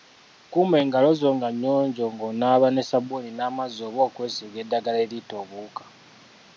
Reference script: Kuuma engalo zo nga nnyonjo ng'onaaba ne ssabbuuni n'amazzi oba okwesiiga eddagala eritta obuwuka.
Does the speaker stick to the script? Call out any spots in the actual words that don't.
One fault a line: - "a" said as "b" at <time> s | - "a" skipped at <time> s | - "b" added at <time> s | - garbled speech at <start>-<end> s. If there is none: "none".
none